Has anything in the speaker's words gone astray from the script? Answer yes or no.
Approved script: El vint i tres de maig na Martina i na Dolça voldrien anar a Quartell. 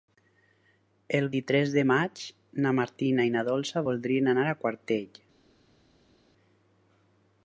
yes